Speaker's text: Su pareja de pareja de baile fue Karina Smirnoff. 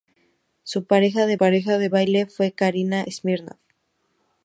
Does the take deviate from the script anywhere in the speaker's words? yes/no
no